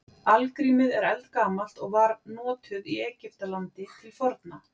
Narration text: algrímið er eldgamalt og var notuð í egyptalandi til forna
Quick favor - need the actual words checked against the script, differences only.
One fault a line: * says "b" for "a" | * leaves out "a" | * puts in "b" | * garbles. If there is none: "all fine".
all fine